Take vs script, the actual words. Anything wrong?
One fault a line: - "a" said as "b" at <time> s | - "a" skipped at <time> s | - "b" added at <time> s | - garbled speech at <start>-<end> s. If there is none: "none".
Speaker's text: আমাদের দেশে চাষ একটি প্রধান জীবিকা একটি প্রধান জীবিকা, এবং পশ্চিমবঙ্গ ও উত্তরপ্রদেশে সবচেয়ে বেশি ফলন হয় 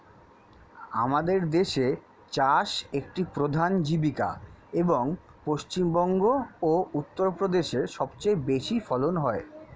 - "একটি প্রধান জীবিকা" skipped at 4.3 s